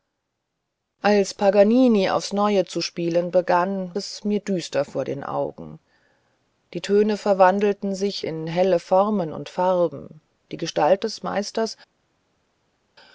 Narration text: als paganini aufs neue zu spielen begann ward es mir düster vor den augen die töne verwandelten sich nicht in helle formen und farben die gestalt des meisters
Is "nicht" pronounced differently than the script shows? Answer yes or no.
yes